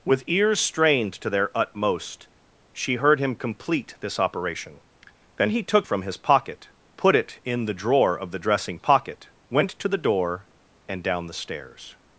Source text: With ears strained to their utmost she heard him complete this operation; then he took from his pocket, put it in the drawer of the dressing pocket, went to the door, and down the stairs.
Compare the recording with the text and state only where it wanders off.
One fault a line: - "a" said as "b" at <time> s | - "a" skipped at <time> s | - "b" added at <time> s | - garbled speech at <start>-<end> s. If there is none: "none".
none